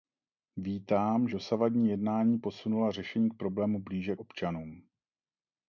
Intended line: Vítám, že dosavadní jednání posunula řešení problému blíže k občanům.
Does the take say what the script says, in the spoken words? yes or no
no